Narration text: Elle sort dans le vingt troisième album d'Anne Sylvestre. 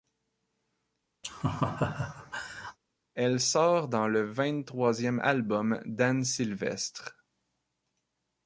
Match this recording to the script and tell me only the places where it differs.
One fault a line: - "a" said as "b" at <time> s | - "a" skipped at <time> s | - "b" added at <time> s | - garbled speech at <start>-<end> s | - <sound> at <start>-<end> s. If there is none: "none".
- laugh at 1.2-2.8 s